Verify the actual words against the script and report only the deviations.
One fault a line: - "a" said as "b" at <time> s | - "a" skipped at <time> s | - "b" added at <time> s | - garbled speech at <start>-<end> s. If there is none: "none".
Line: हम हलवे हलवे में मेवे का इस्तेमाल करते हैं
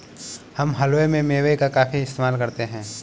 - "हलवे" skipped at 1.1 s
- "काफी" added at 1.7 s